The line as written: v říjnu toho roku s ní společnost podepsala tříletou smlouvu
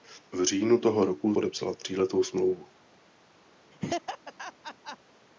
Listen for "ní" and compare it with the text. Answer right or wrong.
wrong